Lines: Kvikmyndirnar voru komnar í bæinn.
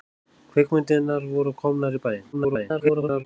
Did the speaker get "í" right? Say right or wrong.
right